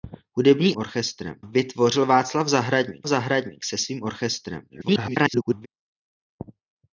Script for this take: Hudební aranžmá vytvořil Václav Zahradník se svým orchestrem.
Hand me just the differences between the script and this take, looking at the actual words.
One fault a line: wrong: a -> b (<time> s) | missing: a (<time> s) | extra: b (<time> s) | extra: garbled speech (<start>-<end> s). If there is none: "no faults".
wrong: aranžmá -> orchestrem (0.8 s)
extra: Zahradník (3.1 s)
extra: garbled speech (4.7-5.7 s)